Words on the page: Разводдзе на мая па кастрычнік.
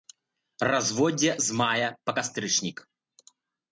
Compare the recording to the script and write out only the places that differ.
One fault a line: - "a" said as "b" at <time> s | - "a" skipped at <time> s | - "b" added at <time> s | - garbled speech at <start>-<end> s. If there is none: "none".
- "на" said as "з" at 1.5 s